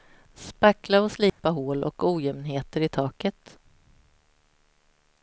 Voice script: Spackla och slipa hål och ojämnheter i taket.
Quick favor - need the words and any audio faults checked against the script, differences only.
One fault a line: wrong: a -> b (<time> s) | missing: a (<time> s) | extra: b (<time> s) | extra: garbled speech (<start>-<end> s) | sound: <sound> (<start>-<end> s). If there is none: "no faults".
sound: dropout (1.3-1.4 s)